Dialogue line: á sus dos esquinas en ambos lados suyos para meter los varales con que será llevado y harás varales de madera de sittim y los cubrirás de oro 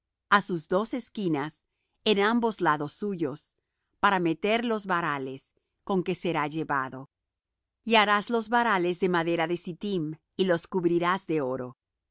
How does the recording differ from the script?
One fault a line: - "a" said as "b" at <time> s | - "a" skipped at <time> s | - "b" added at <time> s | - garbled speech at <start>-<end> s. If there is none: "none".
- "los" added at 8.3 s